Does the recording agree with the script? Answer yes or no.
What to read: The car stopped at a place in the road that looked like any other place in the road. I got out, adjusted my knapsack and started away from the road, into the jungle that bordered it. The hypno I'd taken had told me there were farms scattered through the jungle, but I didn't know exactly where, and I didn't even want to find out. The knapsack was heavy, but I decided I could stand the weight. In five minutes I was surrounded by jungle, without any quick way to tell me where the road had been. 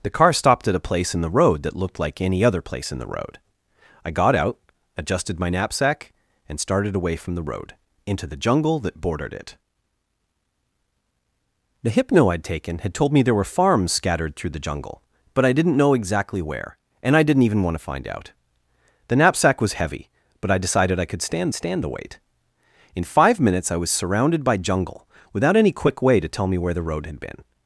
no